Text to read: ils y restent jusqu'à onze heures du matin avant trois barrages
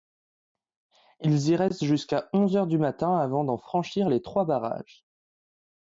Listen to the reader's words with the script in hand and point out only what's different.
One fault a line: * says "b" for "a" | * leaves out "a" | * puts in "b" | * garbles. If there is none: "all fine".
* puts in "d'en franchir les"